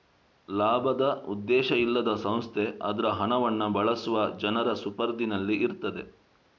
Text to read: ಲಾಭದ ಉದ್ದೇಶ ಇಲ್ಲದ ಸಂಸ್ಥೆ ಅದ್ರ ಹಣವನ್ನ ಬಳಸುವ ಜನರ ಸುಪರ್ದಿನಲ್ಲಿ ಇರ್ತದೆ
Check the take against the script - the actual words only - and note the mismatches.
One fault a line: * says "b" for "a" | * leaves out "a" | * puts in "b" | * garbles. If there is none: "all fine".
all fine